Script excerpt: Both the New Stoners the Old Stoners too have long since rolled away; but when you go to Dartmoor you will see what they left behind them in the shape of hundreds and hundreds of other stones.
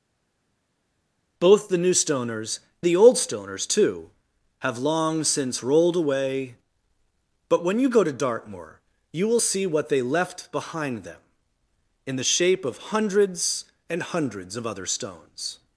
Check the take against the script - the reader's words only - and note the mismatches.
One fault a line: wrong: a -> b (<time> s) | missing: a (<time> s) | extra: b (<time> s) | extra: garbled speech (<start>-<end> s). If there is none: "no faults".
no faults